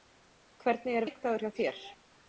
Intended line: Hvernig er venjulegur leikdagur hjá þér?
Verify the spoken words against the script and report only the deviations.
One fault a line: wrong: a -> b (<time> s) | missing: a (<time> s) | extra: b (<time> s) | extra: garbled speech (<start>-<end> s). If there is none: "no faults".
missing: venjulegur (1.1 s)